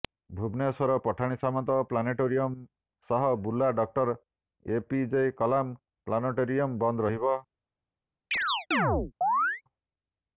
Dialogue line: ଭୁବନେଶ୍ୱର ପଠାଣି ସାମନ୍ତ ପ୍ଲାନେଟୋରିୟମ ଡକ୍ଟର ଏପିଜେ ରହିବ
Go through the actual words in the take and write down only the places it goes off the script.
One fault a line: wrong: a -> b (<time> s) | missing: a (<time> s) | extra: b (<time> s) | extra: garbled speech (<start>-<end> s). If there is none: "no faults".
extra: ସହ ବୁର୍ଲା (3.1 s)
extra: କଲାମ ପ୍ଲାନେଟୋରିୟମ ବନ୍ଦ (5.4 s)